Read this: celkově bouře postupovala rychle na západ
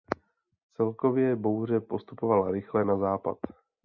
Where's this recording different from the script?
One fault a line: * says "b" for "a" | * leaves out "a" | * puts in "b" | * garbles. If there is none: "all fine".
all fine